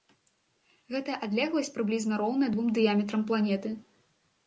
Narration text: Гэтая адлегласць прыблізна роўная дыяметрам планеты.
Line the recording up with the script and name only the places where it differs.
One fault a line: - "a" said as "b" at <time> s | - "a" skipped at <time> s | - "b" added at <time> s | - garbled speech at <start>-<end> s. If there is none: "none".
- "двум" added at 2.6 s